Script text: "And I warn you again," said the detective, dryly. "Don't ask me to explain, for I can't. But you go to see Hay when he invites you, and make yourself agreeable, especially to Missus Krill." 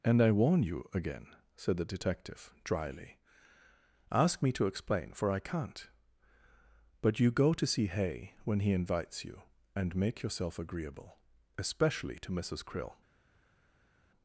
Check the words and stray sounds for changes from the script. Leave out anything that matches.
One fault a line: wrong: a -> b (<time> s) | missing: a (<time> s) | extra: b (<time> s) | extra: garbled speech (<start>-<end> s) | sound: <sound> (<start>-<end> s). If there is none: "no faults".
missing: Don't (3.2 s)